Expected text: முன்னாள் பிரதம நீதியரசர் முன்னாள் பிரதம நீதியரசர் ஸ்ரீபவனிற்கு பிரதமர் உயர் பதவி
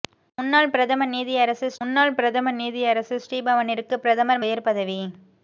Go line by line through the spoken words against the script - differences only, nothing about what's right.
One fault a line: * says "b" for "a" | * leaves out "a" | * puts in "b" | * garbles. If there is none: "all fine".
all fine